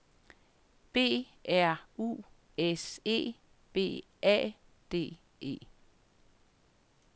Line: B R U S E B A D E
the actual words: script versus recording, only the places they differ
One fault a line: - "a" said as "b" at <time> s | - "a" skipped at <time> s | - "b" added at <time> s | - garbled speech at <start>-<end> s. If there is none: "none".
none